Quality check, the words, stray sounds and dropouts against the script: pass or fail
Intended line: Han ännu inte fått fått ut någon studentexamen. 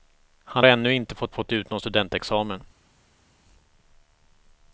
pass